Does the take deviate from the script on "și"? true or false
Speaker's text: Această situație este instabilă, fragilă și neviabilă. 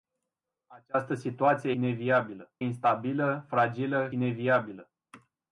true